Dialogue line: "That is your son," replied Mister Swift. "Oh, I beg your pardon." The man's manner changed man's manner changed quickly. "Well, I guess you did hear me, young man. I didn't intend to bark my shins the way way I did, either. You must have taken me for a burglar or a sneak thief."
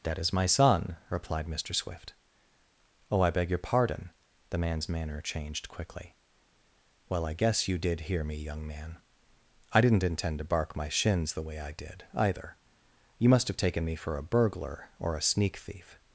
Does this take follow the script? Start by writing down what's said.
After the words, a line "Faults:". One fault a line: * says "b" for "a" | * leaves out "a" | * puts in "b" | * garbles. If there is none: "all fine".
"That is my son," replied Mister Swift. "Oh, I beg your pardon." The man's manner changed quickly. "Well, I guess you did hear me, young man. I didn't intend to bark my shins the way I did, either. You must have taken me for a burglar or a sneak thief."
Faults:
* says "my" for "your"
* leaves out "man's manner changed"
* leaves out "way"